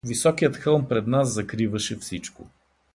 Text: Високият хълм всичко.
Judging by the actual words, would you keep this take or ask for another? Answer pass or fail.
fail